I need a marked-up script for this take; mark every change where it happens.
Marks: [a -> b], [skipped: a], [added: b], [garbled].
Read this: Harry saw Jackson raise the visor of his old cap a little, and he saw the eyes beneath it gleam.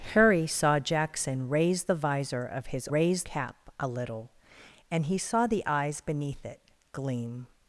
Harry saw Jackson raise the visor of his [old -> raise] cap a little, and he saw the eyes beneath it gleam.